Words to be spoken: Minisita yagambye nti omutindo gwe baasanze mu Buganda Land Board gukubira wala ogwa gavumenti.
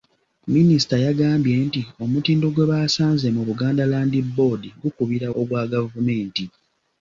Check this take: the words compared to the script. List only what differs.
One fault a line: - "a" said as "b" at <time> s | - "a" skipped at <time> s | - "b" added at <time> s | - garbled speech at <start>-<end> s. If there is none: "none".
- "wala" skipped at 5.3 s